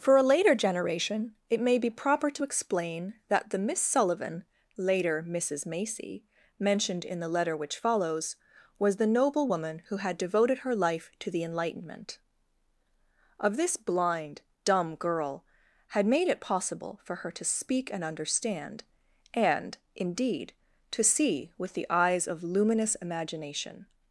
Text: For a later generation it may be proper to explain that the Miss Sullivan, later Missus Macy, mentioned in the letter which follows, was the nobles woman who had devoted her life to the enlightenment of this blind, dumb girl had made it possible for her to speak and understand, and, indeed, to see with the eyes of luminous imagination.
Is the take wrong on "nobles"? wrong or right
wrong